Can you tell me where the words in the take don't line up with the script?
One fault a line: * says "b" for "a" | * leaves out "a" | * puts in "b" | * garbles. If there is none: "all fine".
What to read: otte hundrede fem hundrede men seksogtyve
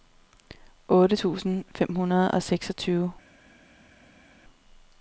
* says "tusind" for "hundrede"
* says "og" for "men"